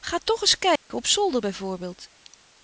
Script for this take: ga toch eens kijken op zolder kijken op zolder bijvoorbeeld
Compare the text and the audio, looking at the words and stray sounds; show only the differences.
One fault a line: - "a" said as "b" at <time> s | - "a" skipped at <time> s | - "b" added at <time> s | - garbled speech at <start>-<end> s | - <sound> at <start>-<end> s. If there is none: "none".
- dropout at 0.8-0.9 s
- "kijken op zolder" skipped at 1.4 s